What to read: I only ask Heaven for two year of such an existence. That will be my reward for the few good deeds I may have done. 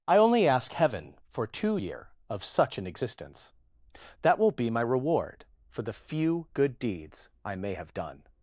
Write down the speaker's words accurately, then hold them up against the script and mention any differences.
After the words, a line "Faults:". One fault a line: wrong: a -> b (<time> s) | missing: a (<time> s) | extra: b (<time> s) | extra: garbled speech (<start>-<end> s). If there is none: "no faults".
I only ask Heaven for two year of such an existence. That will be my reward for the few good deeds I may have done.
Faults:
no faults